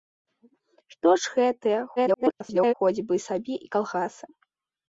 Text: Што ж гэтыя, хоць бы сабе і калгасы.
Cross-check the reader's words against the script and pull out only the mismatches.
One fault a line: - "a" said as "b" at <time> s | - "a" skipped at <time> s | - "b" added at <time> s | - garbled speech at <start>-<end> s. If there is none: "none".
- garbled speech at 2.0-2.7 s